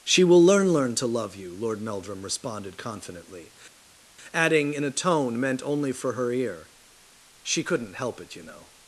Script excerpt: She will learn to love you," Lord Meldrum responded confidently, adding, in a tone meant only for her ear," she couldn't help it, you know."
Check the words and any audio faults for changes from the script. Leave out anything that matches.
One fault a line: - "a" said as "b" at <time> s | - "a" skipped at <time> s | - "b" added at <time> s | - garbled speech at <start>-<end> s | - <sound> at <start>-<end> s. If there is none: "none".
- "learn" added at 0.7 s